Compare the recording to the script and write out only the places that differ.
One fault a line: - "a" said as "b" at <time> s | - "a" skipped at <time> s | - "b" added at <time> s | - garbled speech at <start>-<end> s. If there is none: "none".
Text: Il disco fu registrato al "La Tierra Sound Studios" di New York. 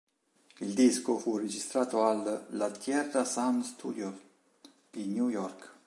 none